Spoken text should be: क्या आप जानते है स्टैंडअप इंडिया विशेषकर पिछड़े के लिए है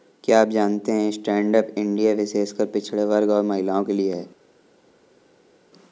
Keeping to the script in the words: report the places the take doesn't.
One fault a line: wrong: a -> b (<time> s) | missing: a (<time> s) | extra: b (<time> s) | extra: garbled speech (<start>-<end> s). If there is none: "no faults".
extra: वर्ग और महिलाओं (3.1 s)